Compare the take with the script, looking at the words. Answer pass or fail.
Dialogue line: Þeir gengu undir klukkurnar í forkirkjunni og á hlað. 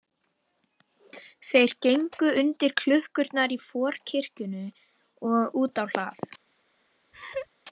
fail